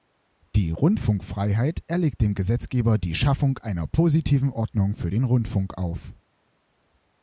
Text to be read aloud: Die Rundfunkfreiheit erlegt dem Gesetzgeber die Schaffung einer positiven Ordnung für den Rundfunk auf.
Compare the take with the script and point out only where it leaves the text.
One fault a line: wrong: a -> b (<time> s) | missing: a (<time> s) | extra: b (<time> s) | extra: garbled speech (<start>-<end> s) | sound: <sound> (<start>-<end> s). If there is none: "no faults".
no faults